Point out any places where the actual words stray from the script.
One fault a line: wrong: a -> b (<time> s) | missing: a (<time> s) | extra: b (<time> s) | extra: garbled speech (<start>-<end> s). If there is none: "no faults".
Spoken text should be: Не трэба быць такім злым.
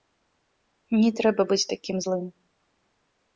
no faults